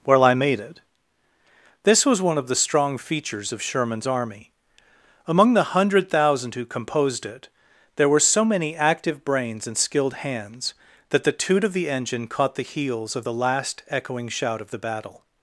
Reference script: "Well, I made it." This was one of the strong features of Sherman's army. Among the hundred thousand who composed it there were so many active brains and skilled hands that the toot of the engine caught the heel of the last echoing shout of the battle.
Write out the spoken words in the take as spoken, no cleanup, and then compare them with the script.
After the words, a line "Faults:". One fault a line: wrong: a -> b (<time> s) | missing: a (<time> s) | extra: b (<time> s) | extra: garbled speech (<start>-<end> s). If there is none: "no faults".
"Well, I made it." This was one of the strong features of Sherman's army. Among the hundred thousand who composed it there were so many active brains and skilled hands that the toot of the engine caught the heels of the last echoing shout of the battle.
Faults:
wrong: heel -> heels (12.6 s)